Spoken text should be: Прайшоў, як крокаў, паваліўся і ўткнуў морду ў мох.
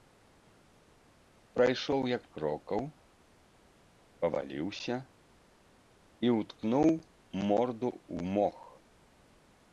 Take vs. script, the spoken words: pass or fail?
pass